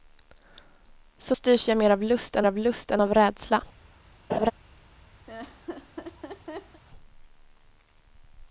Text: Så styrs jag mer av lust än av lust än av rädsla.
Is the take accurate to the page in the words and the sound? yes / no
no